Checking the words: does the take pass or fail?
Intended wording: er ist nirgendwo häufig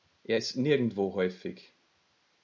pass